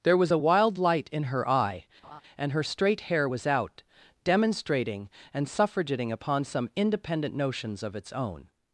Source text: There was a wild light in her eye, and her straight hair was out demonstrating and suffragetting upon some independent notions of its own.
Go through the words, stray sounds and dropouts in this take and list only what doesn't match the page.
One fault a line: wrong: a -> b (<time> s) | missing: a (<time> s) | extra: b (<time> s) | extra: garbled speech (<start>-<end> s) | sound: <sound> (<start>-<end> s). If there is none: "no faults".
sound: laugh (2.0-2.2 s)